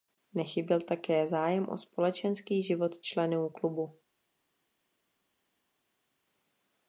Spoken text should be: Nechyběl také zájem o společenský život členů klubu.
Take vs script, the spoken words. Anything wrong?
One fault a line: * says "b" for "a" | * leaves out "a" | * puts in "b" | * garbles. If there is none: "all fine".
all fine